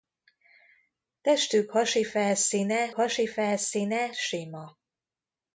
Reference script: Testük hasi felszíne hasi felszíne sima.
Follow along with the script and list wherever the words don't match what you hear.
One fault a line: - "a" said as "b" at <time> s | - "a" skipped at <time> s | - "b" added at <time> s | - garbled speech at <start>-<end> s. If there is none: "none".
none